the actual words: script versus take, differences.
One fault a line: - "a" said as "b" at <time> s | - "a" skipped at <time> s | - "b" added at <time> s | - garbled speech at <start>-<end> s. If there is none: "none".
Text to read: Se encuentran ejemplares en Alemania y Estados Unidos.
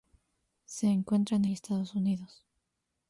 - "ejemplares en Alemania" skipped at 1.4 s